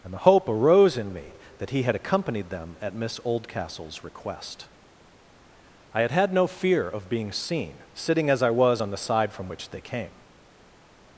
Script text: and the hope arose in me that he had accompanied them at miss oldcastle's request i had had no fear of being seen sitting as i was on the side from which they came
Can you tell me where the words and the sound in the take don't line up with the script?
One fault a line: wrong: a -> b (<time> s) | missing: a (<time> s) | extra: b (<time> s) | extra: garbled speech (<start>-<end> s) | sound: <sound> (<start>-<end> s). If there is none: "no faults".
no faults